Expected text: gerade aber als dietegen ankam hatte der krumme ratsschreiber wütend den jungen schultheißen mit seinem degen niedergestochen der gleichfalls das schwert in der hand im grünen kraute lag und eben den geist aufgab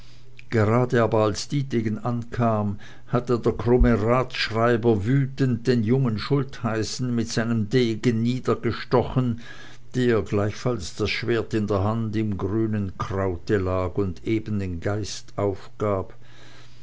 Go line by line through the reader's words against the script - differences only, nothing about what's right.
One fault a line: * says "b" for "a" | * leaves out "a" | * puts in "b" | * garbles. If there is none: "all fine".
all fine